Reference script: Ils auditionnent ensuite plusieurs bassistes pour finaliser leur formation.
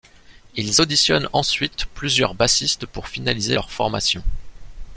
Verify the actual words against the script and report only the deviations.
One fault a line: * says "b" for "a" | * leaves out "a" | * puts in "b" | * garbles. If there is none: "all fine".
all fine